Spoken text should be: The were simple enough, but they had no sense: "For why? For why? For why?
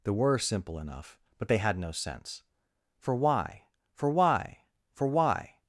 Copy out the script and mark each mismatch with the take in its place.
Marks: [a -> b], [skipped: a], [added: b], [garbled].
The were simple enough, but they had no sense: "For why? For why? For why?